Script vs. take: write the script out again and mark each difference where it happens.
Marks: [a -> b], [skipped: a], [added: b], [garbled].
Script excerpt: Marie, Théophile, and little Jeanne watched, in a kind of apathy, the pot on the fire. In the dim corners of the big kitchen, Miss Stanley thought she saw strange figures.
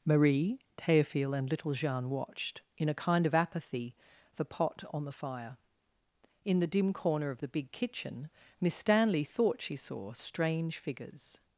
Marie, Théophile, and little Jeanne watched, in a kind of apathy, the pot on the fire. In the dim [corners -> corner] of the big kitchen, Miss Stanley thought she saw strange figures.